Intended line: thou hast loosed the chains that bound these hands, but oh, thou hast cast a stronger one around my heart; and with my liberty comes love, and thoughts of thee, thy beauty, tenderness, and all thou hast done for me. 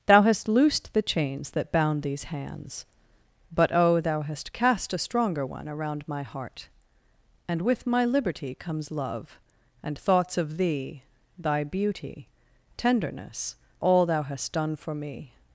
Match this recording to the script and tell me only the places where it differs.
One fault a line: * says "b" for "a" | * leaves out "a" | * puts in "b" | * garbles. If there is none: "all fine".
* leaves out "and"